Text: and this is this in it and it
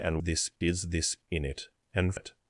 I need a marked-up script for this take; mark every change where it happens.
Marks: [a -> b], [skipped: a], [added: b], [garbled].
and this is this in it and it